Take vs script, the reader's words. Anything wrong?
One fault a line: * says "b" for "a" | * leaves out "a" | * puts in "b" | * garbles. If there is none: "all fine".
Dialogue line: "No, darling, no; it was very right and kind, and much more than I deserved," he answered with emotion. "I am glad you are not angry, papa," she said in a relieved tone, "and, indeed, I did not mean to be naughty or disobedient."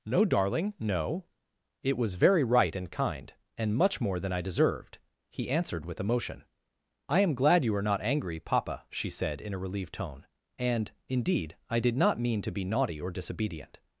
all fine